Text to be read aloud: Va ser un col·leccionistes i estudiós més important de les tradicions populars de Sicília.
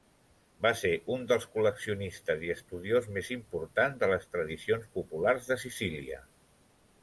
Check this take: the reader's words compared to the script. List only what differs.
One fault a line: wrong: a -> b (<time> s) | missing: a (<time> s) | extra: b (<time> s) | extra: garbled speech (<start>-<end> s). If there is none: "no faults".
extra: dels (1.3 s)